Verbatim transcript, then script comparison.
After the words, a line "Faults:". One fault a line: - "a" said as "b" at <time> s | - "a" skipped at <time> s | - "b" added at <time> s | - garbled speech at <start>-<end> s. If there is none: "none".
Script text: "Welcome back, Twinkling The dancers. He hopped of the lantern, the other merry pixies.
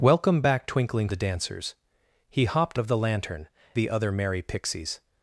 "Welcome back, Twinkling The dancers. He hopped of the lantern, the other merry pixies.
Faults:
none